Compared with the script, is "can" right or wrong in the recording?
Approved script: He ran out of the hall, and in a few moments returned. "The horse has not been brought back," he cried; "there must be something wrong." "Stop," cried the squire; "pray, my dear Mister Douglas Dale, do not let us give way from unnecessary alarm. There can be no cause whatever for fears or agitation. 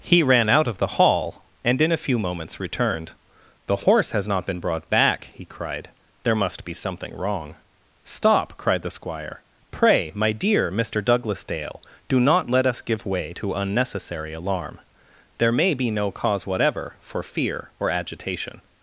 wrong